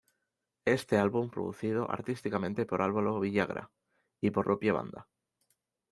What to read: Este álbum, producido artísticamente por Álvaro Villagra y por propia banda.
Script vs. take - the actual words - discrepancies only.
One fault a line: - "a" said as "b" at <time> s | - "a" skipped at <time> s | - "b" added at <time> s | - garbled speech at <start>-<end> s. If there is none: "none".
none